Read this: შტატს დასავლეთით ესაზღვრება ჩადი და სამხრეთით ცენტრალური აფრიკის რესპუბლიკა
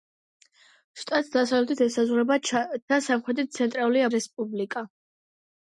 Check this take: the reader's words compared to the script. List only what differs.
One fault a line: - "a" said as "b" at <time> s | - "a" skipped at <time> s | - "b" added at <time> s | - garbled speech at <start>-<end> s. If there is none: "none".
- "ჩადი" skipped at 2.4 s
- "აფრიკის" skipped at 4.0 s